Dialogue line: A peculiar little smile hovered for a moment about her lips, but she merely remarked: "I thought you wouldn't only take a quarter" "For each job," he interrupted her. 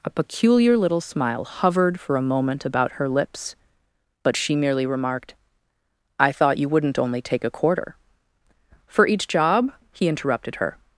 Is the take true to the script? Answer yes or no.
yes